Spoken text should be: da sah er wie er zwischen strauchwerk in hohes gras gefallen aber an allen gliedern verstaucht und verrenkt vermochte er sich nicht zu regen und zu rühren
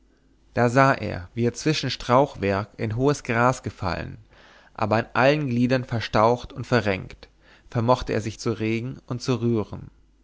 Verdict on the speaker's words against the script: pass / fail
fail